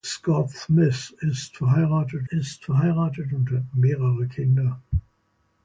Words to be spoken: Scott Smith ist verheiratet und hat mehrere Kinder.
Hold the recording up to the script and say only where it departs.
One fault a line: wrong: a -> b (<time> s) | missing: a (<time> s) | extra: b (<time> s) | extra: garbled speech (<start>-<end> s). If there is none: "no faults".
extra: ist verheiratet (2.3 s)